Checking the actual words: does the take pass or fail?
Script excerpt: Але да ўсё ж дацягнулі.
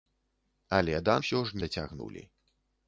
pass